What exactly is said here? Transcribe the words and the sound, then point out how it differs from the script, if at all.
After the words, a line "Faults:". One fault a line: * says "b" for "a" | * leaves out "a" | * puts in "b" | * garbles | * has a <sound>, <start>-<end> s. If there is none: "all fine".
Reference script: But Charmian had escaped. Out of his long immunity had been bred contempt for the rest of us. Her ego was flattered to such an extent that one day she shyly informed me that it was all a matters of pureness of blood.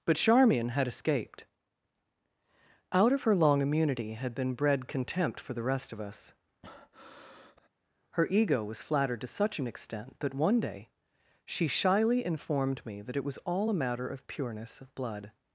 But Charmian had escaped. Out of her long immunity had been bred contempt for the rest of us. Her ego was flattered to such an extent that one day she shyly informed me that it was all a matter of pureness of blood.
Faults:
* says "her" for "his"
* has a breath, 6.6-7.7 s
* says "matter" for "matters"